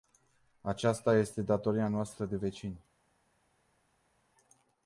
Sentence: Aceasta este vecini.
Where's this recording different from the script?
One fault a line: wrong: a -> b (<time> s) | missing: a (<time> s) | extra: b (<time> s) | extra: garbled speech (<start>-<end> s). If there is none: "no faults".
extra: datoria noastră de (1.4 s)